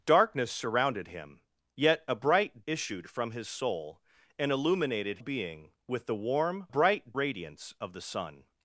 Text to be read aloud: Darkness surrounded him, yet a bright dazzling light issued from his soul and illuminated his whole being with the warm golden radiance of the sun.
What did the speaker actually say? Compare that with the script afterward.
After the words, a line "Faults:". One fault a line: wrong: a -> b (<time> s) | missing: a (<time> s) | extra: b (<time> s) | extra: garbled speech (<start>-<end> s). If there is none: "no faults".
Darkness surrounded him, yet a bright issued from his soul and illuminated being with the warm bright radiance of the sun.
Faults:
missing: dazzling light (2.6 s)
missing: his whole (5.2 s)
wrong: golden -> bright (6.7 s)